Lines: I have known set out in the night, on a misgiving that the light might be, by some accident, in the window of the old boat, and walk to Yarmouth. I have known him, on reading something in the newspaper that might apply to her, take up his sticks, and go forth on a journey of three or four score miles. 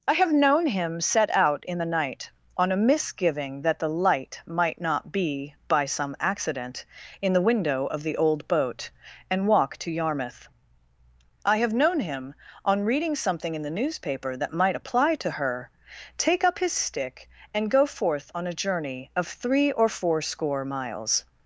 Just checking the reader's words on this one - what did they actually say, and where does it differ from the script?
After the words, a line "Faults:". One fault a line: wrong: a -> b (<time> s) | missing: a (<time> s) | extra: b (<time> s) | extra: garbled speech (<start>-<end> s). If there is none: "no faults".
I have known him set out in the night, on a misgiving that the light might not be, by some accident, in the window of the old boat, and walk to Yarmouth. I have known him, on reading something in the newspaper that might apply to her, take up his stick, and go forth on a journey of three or four score miles.
Faults:
extra: him (0.7 s)
extra: not (4.8 s)
wrong: sticks -> stick (16.7 s)